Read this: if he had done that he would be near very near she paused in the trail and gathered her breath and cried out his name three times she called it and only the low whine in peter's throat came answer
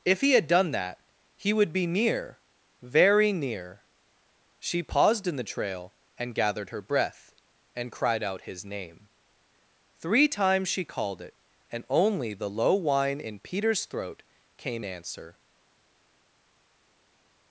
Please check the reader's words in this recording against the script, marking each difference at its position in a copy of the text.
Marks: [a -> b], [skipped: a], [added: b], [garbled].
if he had done that he would be near very near she paused in the trail and gathered her breath and cried out his name three times she called it and only the low whine in peter's throat came answer